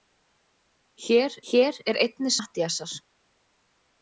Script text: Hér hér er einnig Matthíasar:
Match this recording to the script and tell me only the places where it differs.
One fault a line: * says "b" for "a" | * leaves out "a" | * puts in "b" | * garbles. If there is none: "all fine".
all fine